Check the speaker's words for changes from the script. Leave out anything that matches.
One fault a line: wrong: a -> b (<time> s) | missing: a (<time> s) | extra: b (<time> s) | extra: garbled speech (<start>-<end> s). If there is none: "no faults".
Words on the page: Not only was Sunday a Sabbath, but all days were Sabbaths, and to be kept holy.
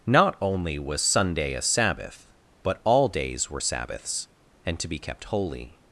no faults